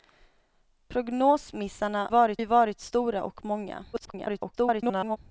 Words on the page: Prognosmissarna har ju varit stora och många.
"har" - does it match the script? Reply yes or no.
no